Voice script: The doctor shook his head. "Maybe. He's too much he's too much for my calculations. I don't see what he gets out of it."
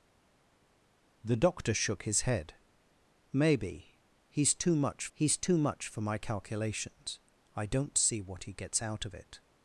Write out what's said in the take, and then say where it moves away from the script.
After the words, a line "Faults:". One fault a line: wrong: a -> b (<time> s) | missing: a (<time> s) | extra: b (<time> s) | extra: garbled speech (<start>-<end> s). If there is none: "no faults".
The doctor shook his head. "Maybe. He's too much he's too much for my calculations. I don't see what he gets out of it."
Faults:
no faults